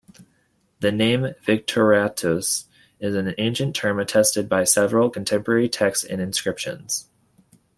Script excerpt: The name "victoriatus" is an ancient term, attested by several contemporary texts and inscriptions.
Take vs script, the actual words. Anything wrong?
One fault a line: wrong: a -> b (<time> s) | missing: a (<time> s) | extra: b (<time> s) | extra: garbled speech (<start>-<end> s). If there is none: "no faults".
no faults